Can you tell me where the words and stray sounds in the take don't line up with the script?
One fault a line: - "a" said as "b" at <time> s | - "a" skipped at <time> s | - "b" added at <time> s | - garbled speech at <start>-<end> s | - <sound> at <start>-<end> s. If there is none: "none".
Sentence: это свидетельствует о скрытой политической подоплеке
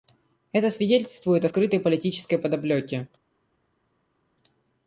none